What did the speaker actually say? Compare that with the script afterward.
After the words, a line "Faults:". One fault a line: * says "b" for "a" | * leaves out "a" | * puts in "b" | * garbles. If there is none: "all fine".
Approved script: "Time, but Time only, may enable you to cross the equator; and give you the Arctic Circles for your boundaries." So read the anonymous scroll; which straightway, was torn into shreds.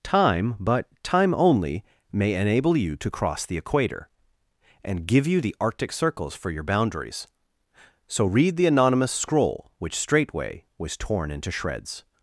"Time, but Time only, may enable you to cross the equator; and give you the Arctic Circles for your boundaries." So read the anonymous scroll; which straightway, was torn into shreds.
Faults:
all fine